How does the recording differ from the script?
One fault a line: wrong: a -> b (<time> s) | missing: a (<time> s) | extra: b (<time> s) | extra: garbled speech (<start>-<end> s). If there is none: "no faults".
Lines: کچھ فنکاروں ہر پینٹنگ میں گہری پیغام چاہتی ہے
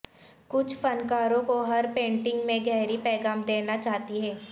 extra: کو (1.5 s)
extra: دینا (3.5 s)